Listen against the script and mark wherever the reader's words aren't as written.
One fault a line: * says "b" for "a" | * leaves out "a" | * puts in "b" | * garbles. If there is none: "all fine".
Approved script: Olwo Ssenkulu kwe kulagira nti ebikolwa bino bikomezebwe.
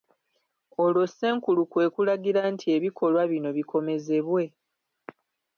all fine